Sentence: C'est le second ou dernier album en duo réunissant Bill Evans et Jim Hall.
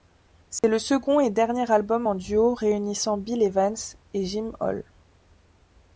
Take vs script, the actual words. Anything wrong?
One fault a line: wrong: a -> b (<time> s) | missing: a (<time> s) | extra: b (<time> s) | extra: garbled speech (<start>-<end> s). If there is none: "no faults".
wrong: ou -> et (1.2 s)